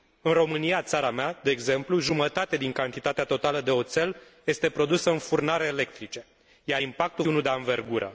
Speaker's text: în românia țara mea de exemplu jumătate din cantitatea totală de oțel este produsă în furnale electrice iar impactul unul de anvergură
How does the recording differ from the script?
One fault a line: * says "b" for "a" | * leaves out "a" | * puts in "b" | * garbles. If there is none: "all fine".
all fine